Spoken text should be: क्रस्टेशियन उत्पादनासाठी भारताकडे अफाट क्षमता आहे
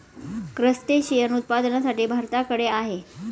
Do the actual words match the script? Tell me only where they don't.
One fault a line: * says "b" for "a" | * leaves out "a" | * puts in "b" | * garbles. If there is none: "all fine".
* leaves out "अफाट क्षमता"